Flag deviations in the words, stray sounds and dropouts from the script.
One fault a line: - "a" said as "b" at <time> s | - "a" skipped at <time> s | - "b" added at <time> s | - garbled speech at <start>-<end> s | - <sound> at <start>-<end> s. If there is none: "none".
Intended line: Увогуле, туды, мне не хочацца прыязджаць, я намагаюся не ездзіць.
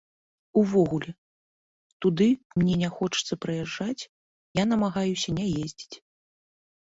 none